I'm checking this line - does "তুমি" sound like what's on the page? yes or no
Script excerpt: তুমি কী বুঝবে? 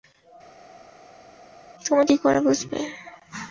yes